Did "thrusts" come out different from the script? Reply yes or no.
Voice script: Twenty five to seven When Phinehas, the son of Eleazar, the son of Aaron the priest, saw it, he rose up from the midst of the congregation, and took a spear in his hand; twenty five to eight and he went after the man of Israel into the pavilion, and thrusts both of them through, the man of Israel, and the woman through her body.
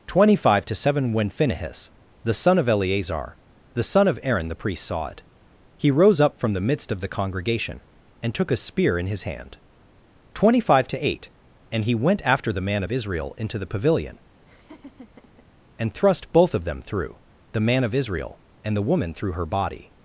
yes